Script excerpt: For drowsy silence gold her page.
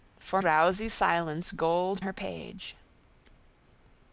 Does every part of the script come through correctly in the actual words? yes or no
yes